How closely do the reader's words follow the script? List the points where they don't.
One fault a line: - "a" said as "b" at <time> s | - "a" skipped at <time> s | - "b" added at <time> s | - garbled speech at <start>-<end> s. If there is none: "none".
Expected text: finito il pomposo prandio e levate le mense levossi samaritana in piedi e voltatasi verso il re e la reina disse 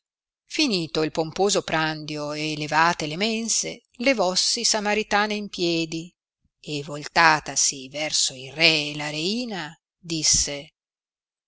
none